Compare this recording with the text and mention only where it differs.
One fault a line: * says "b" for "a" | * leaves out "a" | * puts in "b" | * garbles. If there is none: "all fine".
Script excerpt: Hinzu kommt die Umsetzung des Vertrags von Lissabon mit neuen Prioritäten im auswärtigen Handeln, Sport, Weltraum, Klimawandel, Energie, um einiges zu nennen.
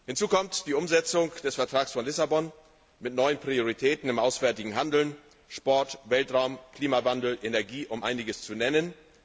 all fine